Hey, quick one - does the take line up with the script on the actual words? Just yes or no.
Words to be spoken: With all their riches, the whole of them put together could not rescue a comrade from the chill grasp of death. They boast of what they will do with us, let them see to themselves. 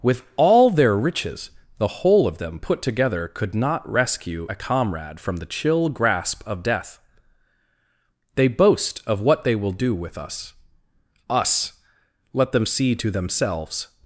no